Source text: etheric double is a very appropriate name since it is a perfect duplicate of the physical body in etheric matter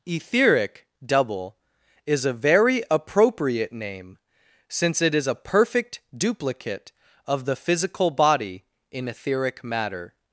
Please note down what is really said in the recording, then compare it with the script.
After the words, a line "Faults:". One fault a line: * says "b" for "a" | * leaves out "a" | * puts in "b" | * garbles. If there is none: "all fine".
etheric double is a very appropriate name since it is a perfect duplicate of the physical body in etheric matter
Faults:
all fine